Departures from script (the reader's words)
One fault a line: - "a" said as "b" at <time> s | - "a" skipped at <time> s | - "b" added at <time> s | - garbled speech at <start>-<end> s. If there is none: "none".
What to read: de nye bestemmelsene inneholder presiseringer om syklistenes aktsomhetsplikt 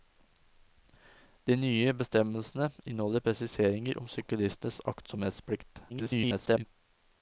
- garbled speech at 5.9-6.7 s